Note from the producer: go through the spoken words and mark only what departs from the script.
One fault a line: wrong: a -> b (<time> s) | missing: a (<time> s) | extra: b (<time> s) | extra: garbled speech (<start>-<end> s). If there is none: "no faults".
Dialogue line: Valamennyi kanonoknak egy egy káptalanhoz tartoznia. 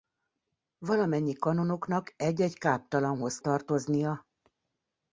no faults